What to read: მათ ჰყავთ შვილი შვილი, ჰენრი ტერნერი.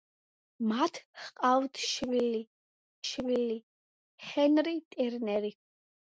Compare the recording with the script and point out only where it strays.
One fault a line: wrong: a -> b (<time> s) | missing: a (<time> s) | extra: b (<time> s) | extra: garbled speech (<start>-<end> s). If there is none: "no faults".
no faults